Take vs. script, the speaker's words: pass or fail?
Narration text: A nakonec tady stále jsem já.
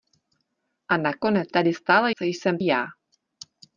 pass